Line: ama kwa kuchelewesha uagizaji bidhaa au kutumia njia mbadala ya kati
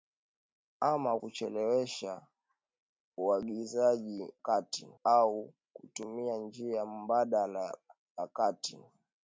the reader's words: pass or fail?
fail